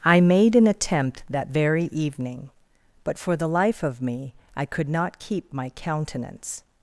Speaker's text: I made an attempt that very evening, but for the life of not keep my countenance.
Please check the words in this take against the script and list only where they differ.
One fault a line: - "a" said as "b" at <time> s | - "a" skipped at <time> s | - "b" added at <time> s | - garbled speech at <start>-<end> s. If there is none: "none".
- "me I could" added at 4.0 s